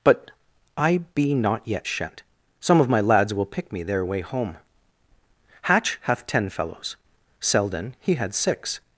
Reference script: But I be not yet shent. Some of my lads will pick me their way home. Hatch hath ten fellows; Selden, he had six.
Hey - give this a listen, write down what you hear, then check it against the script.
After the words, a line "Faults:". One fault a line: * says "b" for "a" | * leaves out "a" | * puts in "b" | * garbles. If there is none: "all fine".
But I be not yet shent. Some of my lads will pick me their way home. Hatch hath ten fellows; Selden, he had six.
Faults:
all fine